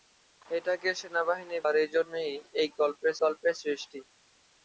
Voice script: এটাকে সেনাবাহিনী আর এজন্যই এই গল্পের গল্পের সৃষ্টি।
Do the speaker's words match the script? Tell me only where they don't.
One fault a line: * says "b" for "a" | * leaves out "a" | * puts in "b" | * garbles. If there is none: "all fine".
all fine